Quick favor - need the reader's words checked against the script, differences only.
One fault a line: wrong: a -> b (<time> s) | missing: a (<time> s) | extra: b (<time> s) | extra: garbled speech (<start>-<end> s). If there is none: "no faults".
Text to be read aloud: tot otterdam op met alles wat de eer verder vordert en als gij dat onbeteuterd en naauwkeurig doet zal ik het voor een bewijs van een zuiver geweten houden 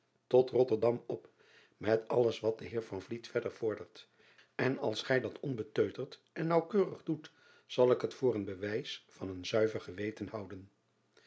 no faults